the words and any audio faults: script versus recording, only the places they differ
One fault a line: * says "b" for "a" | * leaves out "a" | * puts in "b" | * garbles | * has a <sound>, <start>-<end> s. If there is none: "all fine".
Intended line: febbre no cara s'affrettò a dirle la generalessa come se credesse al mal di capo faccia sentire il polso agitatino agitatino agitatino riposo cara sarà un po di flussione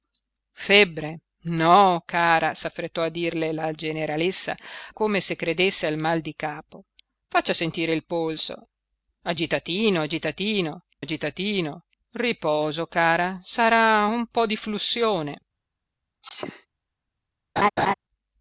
* has a sneeze, 16.2-16.7 s
* has a laugh, 17.6-17.9 s